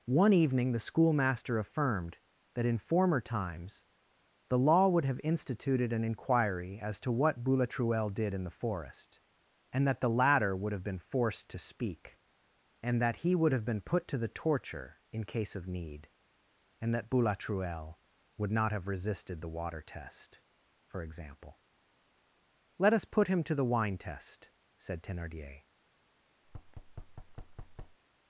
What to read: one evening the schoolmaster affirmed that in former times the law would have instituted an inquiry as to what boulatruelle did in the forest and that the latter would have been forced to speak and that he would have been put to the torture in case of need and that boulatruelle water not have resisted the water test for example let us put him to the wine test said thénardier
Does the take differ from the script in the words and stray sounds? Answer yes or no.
yes